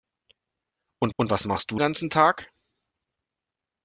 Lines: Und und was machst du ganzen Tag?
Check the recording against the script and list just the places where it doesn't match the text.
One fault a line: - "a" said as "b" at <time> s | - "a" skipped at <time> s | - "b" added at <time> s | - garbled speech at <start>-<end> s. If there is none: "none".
none